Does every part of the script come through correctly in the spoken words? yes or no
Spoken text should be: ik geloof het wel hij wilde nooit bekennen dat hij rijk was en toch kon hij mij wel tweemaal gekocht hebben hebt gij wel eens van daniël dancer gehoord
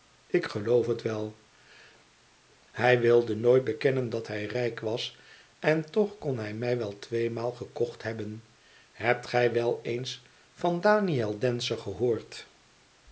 yes